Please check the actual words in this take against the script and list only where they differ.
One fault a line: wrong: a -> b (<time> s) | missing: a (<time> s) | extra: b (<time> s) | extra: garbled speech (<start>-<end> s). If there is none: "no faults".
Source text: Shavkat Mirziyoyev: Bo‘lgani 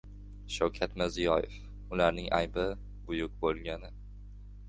extra: Ularning aybi buyuk (2.0 s)